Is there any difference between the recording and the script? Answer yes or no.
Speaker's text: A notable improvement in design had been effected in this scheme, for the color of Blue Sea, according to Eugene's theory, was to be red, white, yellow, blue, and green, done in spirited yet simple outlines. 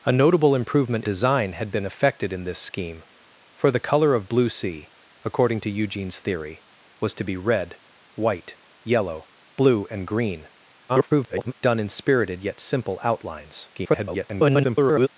yes